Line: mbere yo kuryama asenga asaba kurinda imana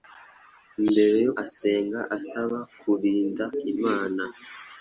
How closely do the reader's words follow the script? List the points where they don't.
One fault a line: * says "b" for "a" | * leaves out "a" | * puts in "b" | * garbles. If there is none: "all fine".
* leaves out "kuryama"